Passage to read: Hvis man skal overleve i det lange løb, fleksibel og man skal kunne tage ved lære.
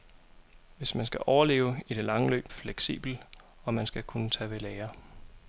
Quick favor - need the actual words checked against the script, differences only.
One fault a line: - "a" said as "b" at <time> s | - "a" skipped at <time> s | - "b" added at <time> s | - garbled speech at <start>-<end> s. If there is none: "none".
none